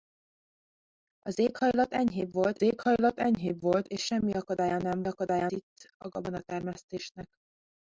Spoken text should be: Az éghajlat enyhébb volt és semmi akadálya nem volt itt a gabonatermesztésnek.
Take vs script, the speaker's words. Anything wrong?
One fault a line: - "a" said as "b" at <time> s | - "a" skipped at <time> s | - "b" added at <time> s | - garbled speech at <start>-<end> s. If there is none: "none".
- "éghajlat enyhébb volt" added at 2.6 s
- "volt" said as "akadálya" at 5.0 s